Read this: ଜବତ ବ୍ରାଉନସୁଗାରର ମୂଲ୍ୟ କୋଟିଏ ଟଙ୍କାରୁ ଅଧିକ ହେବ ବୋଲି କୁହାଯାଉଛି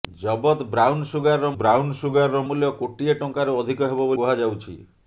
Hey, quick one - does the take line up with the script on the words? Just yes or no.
no